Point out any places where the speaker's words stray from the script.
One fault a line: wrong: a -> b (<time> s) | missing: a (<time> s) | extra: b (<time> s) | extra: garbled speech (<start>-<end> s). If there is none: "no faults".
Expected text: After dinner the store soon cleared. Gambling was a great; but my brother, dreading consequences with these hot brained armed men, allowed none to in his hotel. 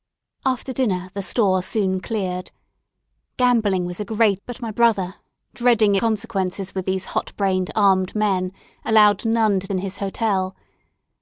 no faults